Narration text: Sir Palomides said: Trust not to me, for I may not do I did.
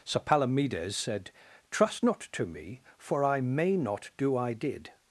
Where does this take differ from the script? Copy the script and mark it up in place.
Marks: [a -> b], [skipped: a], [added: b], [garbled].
Sir Palomides said: Trust not to me, for I may not do I did.